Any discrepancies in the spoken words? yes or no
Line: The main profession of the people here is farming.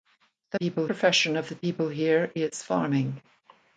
yes